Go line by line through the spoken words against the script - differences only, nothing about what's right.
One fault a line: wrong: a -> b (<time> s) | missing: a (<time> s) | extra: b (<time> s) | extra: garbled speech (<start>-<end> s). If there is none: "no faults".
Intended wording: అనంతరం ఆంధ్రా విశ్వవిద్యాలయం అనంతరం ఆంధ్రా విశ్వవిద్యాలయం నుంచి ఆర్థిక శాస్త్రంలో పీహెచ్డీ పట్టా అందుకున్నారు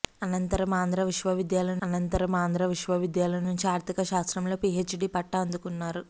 no faults